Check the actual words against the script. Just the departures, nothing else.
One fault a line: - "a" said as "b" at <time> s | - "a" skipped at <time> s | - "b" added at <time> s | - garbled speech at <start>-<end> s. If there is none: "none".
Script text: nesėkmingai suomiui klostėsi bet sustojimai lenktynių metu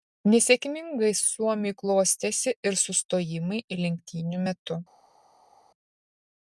- "bet" said as "ir" at 2.7 s